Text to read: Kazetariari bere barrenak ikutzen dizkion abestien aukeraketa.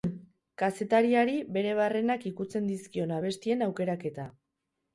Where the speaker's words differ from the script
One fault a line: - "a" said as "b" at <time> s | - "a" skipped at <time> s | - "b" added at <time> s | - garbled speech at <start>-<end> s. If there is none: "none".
none